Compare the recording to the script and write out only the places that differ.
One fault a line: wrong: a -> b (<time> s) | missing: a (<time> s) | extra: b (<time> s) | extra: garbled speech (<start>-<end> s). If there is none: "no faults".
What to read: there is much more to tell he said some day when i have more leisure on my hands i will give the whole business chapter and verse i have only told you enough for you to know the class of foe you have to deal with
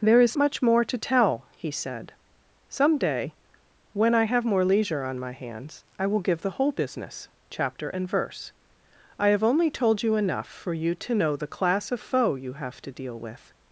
no faults